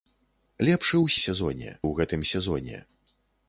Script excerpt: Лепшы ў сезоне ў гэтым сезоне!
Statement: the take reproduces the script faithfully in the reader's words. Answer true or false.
true